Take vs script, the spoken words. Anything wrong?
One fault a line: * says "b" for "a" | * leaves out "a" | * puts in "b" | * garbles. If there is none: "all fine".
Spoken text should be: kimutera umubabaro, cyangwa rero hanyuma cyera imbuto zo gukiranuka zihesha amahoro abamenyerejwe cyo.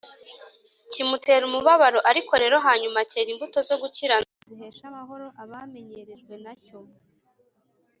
* says "ariko" for "cyangwa"
* puts in "na"